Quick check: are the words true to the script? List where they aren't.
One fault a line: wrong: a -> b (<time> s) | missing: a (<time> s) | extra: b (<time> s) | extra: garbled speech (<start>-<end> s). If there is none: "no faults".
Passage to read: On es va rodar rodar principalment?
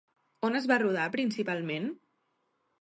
missing: rodar (1.1 s)